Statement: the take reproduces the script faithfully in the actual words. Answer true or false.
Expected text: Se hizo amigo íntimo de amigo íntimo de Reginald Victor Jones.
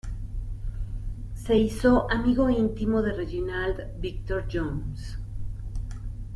false